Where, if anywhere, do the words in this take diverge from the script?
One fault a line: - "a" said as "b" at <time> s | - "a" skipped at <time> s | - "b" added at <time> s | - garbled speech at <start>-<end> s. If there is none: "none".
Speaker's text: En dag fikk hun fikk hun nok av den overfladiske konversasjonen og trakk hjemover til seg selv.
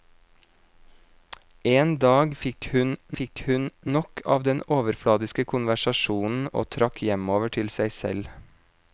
none